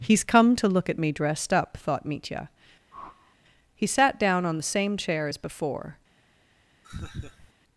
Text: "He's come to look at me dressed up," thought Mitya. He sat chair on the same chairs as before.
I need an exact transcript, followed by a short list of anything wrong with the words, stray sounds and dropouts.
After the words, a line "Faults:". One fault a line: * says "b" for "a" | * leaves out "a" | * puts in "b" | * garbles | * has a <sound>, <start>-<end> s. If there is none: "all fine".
"He's come to look at me dressed up," thought Mitya. He sat down on the same chair as before.
Faults:
* has a whoosh, 2.9-3.4 s
* says "down" for "chair"
* says "chair" for "chairs"
* has a laugh, 6.8-7.5 s